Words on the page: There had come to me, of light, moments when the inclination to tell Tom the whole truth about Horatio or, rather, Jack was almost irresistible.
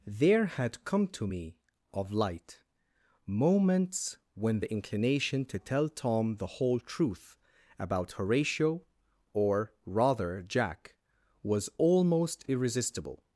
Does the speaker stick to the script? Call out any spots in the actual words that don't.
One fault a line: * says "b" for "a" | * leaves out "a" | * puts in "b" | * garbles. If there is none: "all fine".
all fine